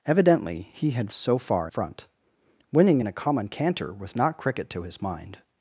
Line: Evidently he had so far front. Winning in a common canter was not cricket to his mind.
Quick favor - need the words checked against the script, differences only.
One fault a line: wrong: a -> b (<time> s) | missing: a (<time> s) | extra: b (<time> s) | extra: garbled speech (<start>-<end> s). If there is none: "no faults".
no faults